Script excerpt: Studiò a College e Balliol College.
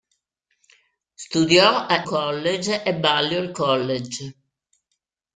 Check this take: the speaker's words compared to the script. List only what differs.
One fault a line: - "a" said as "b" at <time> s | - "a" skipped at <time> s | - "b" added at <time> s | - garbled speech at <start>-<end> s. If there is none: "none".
none